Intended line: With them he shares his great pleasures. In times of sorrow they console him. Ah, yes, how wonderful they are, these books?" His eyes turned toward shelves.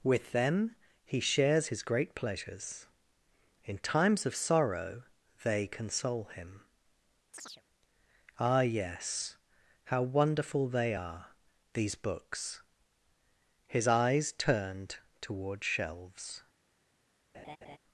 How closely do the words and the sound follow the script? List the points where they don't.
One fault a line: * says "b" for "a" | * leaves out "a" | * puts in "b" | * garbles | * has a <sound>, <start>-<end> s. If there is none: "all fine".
* has a chirp, 7.3-7.6 s
* has a laugh, 17.3-17.8 s